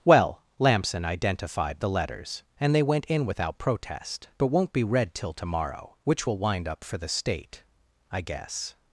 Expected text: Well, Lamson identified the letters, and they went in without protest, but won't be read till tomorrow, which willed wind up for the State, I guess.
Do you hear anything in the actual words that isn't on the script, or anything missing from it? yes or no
yes